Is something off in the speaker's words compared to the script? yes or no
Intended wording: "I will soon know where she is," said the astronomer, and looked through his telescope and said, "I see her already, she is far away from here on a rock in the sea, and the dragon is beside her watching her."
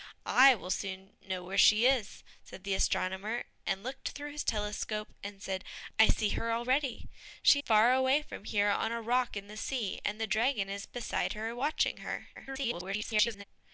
yes